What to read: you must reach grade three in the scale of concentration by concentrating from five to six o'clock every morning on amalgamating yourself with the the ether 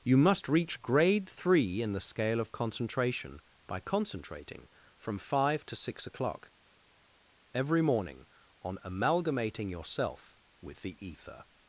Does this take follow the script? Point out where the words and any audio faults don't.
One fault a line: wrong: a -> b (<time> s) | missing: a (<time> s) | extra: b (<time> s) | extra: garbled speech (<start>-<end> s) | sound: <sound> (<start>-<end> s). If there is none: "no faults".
missing: the (10.9 s)